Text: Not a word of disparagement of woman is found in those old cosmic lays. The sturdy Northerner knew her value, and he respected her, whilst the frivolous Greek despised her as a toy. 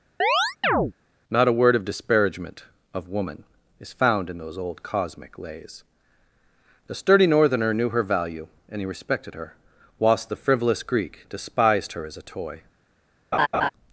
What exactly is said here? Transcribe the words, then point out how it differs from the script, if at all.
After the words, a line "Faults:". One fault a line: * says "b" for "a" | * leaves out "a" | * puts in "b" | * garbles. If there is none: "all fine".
Not a word of disparagement of woman is found in those old cosmic lays. The sturdy Northerner knew her value, and he respected her, whilst the frivolous Greek despised her as a toy.
Faults:
all fine